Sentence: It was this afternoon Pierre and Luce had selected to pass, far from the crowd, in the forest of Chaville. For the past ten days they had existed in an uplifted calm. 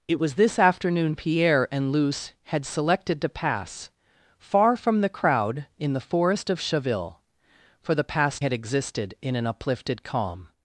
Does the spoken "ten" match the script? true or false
false